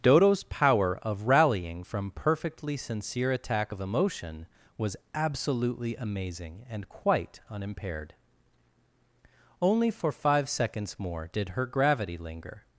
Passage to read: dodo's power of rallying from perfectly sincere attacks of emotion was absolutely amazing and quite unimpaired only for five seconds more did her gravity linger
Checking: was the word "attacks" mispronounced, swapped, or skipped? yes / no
yes